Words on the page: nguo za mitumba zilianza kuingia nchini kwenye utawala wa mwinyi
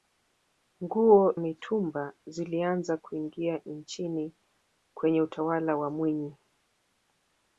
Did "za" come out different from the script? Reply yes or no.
yes